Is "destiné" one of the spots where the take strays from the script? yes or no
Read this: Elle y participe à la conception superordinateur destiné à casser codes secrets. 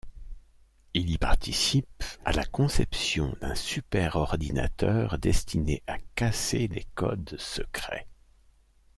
no